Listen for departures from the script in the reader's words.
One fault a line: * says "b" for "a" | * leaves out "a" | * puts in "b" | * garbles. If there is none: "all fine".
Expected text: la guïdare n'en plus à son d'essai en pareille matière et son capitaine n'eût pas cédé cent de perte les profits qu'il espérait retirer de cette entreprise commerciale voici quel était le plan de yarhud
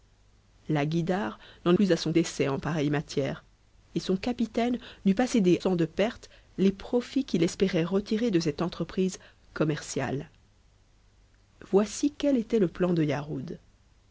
all fine